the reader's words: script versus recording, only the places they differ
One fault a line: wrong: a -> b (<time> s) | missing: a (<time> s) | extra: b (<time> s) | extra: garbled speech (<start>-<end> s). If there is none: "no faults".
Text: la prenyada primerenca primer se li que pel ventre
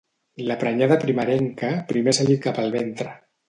no faults